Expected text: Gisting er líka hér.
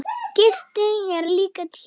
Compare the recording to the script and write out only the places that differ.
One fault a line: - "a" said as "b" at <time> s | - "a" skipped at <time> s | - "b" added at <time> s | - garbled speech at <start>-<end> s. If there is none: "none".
none